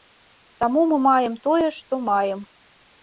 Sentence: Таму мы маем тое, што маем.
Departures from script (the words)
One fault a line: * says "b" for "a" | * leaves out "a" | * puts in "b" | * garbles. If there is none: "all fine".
all fine